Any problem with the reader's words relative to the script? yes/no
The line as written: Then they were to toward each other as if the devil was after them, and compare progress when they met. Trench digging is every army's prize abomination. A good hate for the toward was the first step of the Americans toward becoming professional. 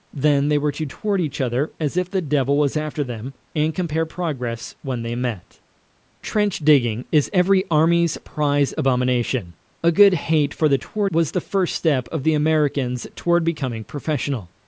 no